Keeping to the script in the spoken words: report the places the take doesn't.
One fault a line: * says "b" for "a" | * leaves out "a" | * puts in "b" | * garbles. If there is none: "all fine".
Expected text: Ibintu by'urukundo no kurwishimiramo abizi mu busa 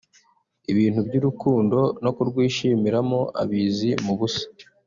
all fine